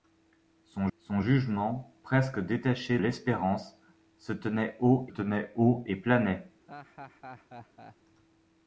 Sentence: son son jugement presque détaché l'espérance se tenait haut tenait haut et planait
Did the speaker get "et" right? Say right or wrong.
right